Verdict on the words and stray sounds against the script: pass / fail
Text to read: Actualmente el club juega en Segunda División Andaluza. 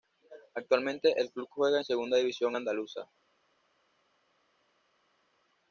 pass